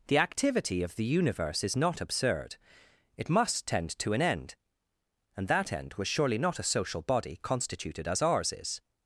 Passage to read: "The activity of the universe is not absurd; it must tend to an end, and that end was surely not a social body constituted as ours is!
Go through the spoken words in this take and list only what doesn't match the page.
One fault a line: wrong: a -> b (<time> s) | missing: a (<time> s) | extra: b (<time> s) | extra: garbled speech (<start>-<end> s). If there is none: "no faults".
no faults